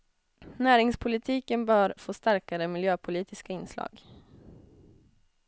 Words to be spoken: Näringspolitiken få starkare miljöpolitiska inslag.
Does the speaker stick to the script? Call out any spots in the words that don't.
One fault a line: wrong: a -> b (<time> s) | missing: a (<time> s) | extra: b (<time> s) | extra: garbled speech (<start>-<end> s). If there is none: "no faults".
extra: bör (1.6 s)